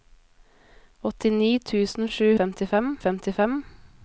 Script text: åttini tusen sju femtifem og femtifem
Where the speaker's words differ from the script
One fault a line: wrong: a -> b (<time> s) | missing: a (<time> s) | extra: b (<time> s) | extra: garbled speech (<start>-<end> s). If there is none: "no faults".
no faults